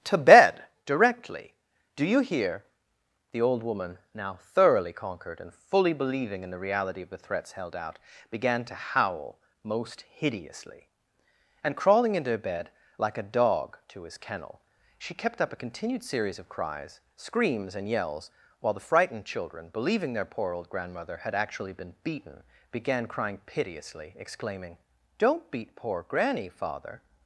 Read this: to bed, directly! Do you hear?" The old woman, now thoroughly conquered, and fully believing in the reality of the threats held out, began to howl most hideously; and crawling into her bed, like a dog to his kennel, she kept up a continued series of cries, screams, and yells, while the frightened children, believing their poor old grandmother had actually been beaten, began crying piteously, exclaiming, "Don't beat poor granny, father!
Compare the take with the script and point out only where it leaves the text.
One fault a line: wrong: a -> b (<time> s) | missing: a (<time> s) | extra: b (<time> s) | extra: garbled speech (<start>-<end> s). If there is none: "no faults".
no faults